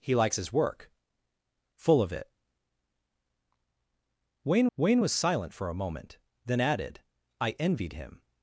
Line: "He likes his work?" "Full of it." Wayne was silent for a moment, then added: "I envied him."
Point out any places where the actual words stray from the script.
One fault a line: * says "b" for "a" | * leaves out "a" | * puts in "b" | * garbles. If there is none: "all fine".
* puts in "wayne"